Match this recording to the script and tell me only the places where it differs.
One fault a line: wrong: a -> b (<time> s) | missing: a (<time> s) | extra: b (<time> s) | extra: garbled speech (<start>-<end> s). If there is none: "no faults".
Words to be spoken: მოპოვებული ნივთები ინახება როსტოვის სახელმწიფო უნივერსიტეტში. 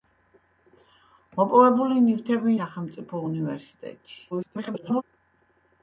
missing: ინახება როსტოვის (2.5 s)
extra: garbled speech (4.3-5.0 s)